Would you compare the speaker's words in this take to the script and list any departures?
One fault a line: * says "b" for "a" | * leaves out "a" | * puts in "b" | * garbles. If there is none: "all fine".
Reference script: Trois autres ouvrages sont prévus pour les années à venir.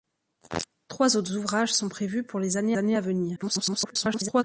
* puts in "années"
* garbles